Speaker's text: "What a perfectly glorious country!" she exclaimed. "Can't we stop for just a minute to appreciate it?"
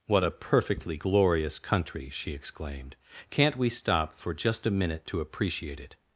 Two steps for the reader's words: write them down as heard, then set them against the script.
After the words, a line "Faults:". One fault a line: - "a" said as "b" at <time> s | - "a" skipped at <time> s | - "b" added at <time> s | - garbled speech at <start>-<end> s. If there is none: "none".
"What a perfectly glorious country!" she exclaimed. "Can't we stop for just a minute to appreciate it?"
Faults:
none